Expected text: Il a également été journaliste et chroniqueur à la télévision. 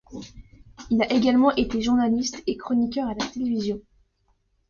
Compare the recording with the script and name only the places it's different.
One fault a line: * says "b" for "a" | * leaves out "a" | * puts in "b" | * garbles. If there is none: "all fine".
all fine